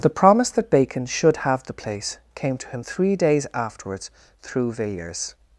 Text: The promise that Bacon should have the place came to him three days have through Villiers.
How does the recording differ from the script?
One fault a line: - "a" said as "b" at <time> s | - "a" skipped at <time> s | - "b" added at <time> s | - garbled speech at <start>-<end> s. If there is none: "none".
- "have" said as "afterwards" at 3.5 s